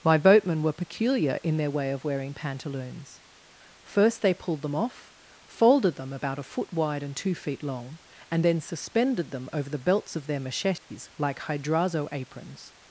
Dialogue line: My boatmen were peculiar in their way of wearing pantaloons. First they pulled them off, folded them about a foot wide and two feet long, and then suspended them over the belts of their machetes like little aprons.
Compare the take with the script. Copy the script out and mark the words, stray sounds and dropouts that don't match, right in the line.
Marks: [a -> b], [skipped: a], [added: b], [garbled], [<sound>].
My boatmen were peculiar in their way of wearing pantaloons. First they pulled them off, folded them about a foot wide and two feet long, and then suspended them over the belts of their machetes [dropout] like [little -> hydrazo] aprons.